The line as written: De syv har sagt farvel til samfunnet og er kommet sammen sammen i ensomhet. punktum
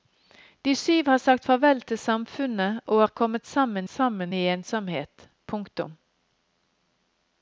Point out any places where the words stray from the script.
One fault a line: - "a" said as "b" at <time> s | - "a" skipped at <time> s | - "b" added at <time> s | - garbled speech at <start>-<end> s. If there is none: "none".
none